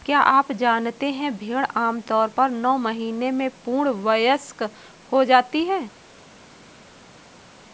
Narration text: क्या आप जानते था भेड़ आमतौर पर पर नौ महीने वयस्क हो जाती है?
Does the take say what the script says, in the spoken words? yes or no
no